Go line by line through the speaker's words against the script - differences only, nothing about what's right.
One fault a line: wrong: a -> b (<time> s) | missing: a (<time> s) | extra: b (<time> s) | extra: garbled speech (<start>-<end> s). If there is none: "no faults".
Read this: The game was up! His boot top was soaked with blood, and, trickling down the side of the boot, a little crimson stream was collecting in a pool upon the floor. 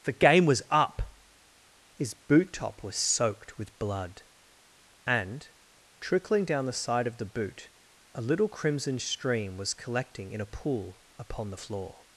no faults